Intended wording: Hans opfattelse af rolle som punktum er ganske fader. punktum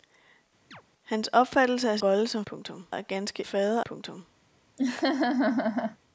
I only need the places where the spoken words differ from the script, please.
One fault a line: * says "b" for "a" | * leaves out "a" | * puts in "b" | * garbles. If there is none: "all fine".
all fine